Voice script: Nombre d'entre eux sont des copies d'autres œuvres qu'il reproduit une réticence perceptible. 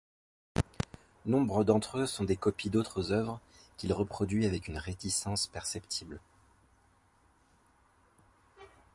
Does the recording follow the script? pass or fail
fail